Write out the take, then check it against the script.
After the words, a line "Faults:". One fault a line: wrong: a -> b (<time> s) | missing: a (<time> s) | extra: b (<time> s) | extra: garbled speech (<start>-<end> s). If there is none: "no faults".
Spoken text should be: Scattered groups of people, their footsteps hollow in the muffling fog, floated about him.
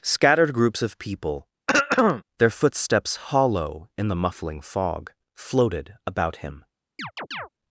Scattered groups of people, their footsteps hollow in the muffling fog, floated about him.
Faults:
no faults